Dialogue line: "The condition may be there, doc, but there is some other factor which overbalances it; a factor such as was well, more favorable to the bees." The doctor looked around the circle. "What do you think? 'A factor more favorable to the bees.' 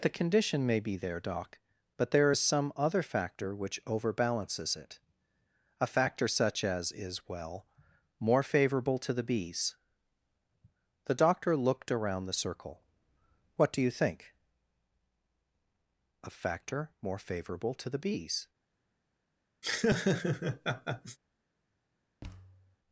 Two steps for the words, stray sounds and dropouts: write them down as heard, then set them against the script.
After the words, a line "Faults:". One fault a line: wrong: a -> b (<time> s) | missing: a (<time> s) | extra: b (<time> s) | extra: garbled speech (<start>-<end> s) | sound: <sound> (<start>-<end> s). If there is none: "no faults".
"The condition may be there, doc, but there is some other factor which overbalances it; a factor such as is well, more favorable to the bees." The doctor looked around the circle. "What do you think? 'A factor more favorable to the bees.'
Faults:
wrong: was -> is (6.9 s)
sound: laugh (19.6-21.2 s)
sound: thud (22.2-22.8 s)